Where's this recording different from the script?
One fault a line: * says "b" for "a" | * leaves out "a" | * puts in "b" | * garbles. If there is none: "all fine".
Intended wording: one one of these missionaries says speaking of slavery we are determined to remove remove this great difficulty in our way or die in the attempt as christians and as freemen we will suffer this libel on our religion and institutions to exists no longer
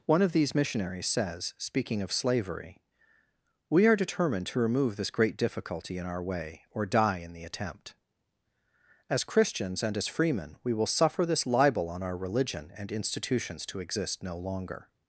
* leaves out "one"
* leaves out "remove"
* says "exist" for "exists"